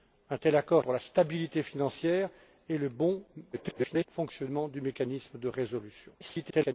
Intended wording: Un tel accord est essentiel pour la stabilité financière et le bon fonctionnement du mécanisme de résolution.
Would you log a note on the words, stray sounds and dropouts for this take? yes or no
yes